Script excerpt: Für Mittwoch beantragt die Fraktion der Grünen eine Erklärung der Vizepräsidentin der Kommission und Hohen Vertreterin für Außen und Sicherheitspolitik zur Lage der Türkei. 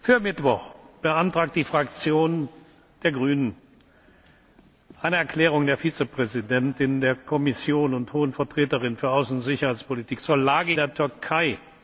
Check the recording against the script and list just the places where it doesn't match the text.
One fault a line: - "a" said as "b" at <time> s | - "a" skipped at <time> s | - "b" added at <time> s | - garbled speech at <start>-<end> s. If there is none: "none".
none